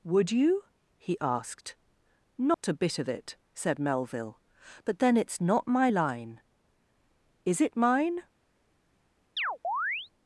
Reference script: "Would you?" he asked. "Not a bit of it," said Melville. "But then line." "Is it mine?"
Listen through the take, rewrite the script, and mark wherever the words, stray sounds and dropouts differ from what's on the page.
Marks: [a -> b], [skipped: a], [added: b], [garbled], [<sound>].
"Would you?" he asked. "Not [dropout] a bit of it," said Melville. "But then [added: it's not my] line." "Is it mine?" [chirp]